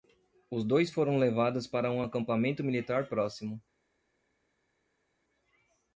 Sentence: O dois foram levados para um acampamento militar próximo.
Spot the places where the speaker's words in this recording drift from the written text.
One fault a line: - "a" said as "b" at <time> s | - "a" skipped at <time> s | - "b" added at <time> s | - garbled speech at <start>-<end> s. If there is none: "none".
- "O" said as "Os" at 0.5 s